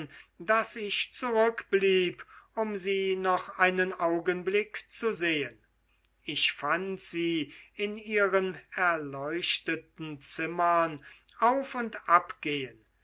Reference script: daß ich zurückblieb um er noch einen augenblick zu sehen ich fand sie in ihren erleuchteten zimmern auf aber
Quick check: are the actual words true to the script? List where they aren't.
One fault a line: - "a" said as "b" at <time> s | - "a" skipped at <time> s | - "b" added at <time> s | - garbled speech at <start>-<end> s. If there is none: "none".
- "er" said as "sie" at 2.8 s
- "aber" said as "und" at 11.7 s